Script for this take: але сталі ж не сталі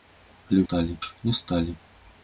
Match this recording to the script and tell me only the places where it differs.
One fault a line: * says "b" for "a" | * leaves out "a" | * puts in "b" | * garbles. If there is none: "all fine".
all fine